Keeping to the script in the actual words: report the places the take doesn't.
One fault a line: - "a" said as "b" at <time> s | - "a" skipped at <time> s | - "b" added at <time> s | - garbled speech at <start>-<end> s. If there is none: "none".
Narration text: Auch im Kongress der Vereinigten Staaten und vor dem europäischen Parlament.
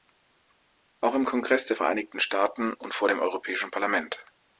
none